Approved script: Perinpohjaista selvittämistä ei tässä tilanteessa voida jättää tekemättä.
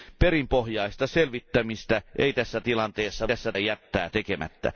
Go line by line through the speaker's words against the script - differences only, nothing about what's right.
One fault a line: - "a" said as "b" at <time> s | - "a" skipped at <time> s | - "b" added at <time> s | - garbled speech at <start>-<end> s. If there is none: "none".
- "voida" said as "tässä" at 3.2 s